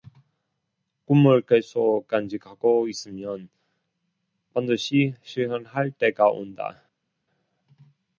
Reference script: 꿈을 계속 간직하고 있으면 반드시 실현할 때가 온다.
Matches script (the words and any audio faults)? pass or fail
pass